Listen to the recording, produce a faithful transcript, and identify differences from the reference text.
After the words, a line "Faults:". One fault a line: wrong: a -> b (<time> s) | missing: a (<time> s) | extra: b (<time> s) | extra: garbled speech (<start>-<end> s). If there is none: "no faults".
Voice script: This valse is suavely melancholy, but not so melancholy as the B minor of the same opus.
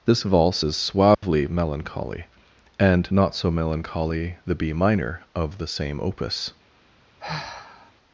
This valse is suavely melancholy, and not so melancholy the B minor of the same opus.
Faults:
wrong: but -> and (2.8 s)
missing: as (4.4 s)